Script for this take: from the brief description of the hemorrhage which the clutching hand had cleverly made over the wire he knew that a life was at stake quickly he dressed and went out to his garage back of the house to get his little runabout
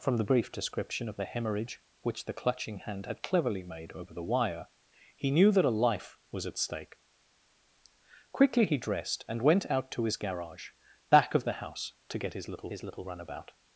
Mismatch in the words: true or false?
true